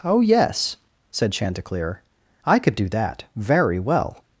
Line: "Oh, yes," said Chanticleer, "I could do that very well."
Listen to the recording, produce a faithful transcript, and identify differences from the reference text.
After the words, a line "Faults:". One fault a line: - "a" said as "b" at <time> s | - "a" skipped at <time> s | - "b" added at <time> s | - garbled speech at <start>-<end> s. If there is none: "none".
"Oh, yes," said Chanticleer, "I could do that very well."
Faults:
none